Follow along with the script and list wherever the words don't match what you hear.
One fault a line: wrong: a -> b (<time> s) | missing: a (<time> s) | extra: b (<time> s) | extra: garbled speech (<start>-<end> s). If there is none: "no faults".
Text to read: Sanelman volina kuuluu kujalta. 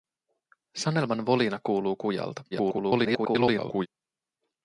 extra: garbled speech (2.5-3.9 s)